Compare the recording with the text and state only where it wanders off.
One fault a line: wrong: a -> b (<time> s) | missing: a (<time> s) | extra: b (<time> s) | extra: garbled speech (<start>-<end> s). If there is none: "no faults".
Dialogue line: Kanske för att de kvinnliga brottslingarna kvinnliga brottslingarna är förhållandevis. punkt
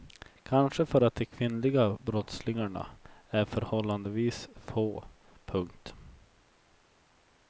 missing: kvinnliga brottslingarna (2.9 s)
extra: få (4.5 s)